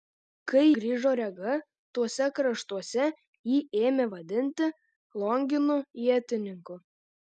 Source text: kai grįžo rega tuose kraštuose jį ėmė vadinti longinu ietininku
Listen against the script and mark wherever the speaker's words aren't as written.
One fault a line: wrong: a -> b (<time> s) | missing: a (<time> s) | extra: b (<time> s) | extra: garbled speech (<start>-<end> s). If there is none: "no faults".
no faults